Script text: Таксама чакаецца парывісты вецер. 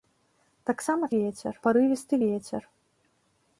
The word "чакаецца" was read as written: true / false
false